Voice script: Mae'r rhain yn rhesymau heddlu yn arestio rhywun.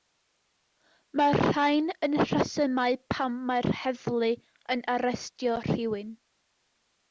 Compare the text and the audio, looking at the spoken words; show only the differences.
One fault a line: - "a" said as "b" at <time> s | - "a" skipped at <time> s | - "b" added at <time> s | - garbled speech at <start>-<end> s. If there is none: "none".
- "pam mae'r" added at 3.2 s